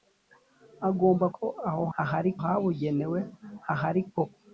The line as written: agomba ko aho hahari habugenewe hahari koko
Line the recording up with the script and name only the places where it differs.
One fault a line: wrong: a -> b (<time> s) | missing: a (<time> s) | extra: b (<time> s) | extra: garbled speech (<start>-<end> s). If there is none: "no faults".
no faults